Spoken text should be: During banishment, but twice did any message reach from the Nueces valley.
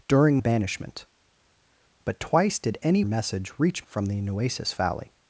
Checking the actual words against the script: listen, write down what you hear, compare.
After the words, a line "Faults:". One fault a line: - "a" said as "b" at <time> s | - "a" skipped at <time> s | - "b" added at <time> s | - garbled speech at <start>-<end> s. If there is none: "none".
During banishment, but twice did any message reach from the Nueces valley.
Faults:
none